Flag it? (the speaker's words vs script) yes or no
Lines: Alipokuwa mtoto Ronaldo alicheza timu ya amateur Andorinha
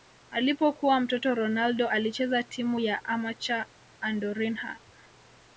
no